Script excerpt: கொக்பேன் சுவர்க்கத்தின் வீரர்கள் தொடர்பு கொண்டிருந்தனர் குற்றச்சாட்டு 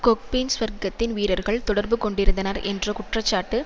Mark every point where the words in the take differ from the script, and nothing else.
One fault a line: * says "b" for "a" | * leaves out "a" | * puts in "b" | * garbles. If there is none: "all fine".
* puts in "என்ற"